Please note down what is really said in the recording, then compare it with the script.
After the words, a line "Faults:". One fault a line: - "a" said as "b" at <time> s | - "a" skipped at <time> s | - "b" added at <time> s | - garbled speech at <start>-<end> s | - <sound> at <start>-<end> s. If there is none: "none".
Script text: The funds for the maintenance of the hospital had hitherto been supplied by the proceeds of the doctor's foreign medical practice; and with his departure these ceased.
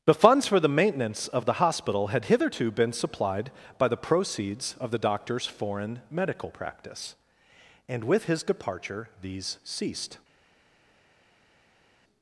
The funds for the maintenance of the hospital had hitherto been supplied by the proceeds of the doctor's foreign medical practice; and with his departure these ceased.
Faults:
none